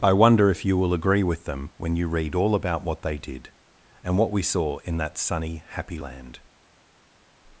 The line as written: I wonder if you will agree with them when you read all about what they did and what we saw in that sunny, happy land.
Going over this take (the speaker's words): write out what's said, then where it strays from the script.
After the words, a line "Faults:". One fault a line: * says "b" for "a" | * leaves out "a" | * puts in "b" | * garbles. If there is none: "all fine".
I wonder if you will agree with them when you read all about what they did and what we saw in that sunny, happy land.
Faults:
all fine